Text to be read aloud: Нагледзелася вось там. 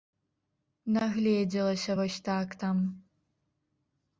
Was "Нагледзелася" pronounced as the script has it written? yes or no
yes